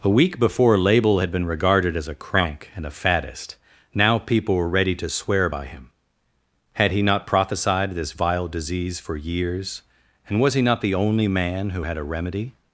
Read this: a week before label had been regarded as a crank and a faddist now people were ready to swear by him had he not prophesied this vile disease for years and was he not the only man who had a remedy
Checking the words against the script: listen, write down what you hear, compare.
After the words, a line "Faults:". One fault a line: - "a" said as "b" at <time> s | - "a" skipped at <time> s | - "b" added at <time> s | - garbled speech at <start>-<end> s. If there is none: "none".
a week before label had been regarded as a crank and a faddist now people were ready to swear by him had he not prophesied this vile disease for years and was he not the only man who had a remedy
Faults:
none